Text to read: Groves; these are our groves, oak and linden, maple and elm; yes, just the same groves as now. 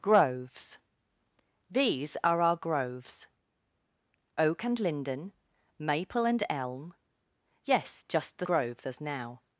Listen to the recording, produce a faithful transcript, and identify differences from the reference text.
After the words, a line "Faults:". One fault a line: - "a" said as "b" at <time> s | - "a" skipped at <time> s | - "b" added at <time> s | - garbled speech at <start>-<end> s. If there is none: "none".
Groves; these are our groves, oak and linden, maple and elm; yes, just the groves as now.
Faults:
- "same" skipped at 8.5 s